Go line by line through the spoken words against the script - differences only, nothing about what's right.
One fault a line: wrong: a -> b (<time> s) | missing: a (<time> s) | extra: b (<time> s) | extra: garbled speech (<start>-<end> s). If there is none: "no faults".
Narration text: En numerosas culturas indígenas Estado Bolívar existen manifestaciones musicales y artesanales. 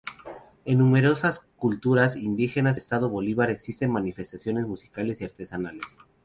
no faults